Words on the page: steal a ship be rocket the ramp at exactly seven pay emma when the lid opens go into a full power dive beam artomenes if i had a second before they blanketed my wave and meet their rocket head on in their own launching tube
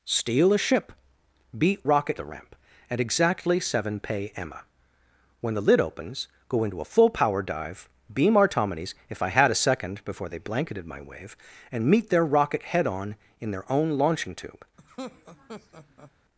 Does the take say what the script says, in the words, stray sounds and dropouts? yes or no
no